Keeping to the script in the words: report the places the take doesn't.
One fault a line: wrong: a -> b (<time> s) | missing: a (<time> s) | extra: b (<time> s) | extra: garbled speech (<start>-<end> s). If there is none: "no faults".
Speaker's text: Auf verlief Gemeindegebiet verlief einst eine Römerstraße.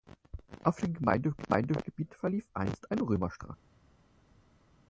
wrong: verlief -> dem (0.8 s)